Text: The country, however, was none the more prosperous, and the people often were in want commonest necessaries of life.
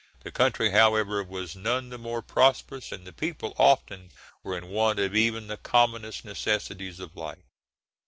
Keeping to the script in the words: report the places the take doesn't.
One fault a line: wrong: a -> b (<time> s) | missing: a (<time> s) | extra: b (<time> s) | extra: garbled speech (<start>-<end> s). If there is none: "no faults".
extra: of even the (5.0 s)